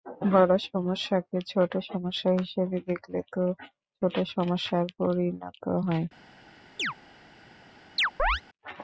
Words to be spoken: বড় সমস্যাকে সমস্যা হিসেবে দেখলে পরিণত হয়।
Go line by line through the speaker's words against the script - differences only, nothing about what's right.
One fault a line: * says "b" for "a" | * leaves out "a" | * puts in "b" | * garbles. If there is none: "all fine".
* puts in "ছোট"
* puts in "তা ছোট সমস্যায়"